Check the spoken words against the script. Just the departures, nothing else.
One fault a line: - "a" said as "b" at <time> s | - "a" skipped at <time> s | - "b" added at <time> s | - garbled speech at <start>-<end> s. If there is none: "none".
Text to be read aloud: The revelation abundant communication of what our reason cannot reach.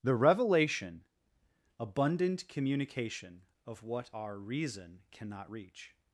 none